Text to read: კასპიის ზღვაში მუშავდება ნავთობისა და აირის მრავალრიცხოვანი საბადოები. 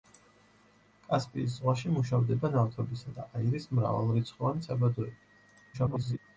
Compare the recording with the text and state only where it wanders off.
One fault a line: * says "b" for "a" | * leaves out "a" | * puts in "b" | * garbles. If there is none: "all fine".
* garbles